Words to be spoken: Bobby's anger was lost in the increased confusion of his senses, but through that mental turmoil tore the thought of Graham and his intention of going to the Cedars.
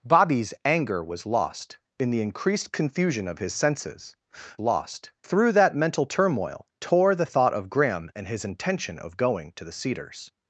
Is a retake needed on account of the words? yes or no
yes